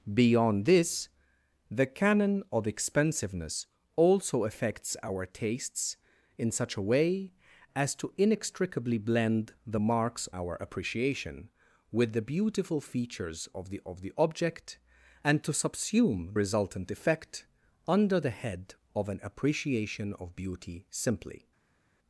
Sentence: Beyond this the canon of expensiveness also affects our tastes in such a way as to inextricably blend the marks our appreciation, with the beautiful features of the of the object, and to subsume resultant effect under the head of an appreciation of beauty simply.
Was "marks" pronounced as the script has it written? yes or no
yes